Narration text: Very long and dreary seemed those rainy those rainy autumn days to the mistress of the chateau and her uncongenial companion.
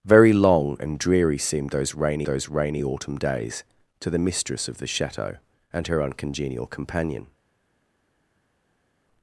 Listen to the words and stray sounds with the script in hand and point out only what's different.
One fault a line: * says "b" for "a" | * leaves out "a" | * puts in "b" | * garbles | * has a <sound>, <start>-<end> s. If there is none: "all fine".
all fine